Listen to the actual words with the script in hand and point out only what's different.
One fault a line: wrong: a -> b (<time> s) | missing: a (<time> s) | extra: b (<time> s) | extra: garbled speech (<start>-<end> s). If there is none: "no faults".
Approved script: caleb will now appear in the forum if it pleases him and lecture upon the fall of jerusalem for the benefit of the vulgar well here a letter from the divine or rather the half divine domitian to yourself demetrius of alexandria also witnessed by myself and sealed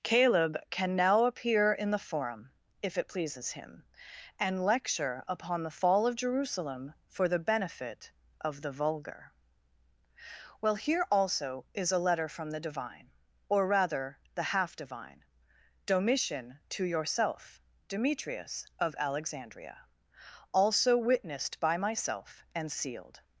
wrong: will -> can (0.7 s)
extra: also is (11.1 s)